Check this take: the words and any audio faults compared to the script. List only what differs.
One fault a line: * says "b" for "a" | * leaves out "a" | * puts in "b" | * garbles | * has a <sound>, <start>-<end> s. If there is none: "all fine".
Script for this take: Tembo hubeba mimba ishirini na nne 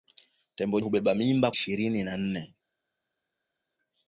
all fine